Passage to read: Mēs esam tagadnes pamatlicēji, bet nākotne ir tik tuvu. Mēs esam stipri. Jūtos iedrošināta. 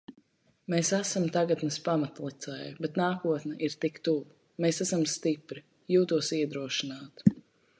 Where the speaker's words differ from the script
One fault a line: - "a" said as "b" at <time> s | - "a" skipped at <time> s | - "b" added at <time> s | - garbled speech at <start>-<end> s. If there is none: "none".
none